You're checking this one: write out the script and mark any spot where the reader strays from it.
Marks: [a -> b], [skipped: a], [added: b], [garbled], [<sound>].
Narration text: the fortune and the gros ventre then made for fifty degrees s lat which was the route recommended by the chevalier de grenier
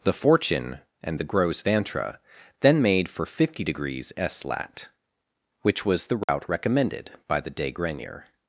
the fortune and the gros ventre then made for fifty degrees s lat which was the route [dropout] recommended by the [skipped: chevalier] de grenier